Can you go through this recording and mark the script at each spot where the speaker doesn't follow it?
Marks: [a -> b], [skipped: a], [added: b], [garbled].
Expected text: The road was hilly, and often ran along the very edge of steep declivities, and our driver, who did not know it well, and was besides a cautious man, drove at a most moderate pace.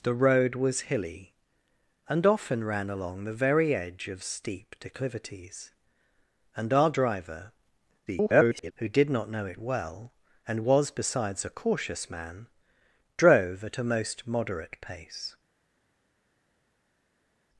The road was hilly, and often ran along the very edge of steep declivities, and our driver, [garbled] who did not know it well, and was besides a cautious man, drove at a most moderate pace.